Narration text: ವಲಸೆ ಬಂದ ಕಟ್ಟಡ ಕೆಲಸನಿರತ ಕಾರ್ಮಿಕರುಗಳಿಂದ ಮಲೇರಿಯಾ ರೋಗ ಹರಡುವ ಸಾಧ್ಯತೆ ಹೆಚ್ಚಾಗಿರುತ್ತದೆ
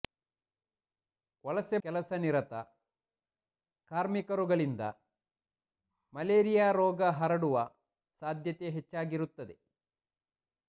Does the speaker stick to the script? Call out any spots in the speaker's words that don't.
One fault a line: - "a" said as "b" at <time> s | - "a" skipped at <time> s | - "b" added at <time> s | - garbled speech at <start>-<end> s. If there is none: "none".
- "ಬಂದ ಕಟ್ಟಡ" skipped at 1.8 s